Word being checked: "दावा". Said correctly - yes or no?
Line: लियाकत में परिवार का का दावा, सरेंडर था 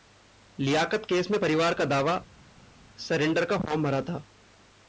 no